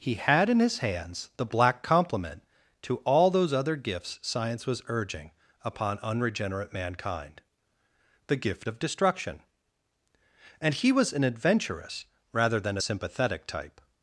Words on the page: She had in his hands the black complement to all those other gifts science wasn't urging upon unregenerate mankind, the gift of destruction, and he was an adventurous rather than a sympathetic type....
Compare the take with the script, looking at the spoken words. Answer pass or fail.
fail